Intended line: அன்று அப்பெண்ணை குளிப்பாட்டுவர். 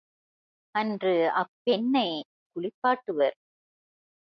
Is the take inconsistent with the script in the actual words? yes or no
no